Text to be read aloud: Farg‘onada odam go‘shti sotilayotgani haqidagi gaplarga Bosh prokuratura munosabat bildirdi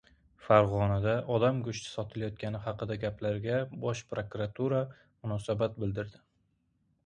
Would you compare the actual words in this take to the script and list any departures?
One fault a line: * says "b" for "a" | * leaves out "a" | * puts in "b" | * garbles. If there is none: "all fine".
all fine